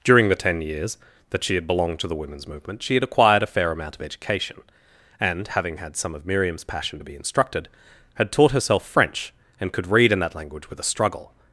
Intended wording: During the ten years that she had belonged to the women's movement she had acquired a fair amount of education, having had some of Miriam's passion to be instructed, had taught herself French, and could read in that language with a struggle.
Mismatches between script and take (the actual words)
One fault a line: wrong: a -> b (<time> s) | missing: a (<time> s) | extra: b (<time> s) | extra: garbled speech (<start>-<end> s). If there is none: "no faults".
extra: and (5.2 s)